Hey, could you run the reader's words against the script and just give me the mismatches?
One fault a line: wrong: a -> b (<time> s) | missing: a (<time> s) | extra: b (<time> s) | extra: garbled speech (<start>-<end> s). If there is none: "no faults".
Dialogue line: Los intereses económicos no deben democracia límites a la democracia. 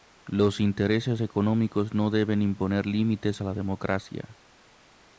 wrong: democracia -> imponer (2.4 s)